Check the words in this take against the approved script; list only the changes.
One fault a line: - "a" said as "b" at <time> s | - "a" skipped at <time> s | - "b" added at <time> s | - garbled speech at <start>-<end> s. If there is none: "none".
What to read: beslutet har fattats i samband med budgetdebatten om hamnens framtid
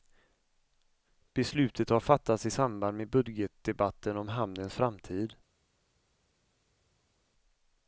none